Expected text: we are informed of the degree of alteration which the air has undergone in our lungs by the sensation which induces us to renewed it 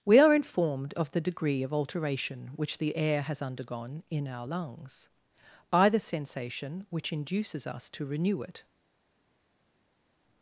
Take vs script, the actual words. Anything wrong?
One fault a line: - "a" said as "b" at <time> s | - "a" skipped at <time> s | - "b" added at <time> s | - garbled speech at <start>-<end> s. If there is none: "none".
- "renewed" said as "renew" at 8.1 s